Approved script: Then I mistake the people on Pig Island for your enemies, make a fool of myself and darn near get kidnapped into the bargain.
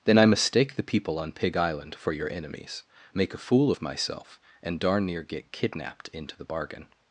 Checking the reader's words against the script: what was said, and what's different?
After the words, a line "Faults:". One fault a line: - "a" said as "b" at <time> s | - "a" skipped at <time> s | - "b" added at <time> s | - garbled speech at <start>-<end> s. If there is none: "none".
Then I mistake the people on Pig Island for your enemies, make a fool of myself and darn near get kidnapped into the bargain.
Faults:
none